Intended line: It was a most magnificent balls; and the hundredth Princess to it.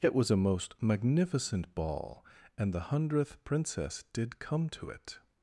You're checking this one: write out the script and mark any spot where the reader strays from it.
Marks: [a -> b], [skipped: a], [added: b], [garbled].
It was a most magnificent [balls; -> ball] and the hundredth Princess [added: did come] to it.